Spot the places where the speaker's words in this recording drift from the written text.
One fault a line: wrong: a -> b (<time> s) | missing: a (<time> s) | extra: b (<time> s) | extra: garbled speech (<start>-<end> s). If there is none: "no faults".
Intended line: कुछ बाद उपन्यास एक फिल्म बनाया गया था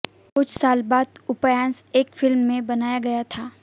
extra: साल (0.5 s)
extra: में (2.4 s)